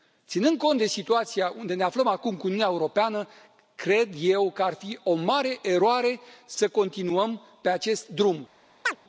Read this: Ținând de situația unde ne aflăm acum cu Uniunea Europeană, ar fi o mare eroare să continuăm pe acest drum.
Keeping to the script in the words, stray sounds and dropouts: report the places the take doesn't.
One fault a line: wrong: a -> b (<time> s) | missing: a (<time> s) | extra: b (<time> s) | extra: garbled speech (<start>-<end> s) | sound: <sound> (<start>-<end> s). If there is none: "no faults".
extra: cont (0.6 s)
extra: cred eu că (3.8 s)
sound: chirp (8.8-9.0 s)